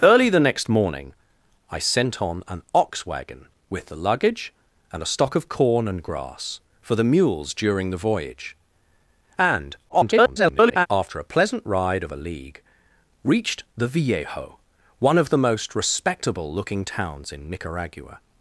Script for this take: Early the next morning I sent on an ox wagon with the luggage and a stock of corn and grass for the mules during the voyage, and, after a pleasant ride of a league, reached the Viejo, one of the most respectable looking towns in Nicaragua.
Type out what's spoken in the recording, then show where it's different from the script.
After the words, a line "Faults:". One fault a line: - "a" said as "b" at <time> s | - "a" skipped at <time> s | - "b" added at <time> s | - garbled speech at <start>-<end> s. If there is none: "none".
Early the next morning I sent on an ox wagon with the luggage and a stock of corn and grass for the mules during the voyage, and, [garbled] after a pleasant ride of a league, reached the Viejo, one of the most respectable looking towns in Nicaragua.
Faults:
- garbled speech at 9.9-10.9 s